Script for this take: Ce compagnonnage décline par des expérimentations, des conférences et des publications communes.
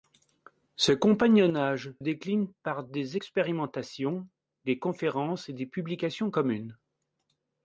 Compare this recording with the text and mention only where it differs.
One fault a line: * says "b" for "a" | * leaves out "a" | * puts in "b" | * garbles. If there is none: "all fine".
all fine